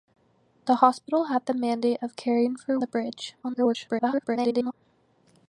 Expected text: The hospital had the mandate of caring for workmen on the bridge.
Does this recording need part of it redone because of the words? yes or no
yes